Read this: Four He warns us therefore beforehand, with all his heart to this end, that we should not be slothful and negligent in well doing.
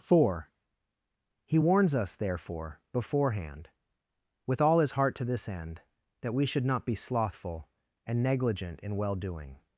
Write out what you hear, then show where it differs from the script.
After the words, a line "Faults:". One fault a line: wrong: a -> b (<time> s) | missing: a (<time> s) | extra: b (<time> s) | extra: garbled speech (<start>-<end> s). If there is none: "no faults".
Four He warns us therefore beforehand, with all his heart to this end, that we should not be slothful and negligent in well doing.
Faults:
no faults